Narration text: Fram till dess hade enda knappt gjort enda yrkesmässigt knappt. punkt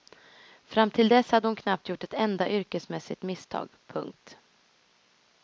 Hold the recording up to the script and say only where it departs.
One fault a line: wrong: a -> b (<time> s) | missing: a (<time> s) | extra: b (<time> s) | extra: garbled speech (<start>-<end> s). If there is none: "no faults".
wrong: enda -> hon (1.5 s)
extra: ett (2.0 s)
wrong: knappt -> misstag (3.2 s)